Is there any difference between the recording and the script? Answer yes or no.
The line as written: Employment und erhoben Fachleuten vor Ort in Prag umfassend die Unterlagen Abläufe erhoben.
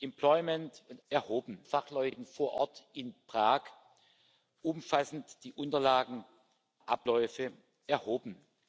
no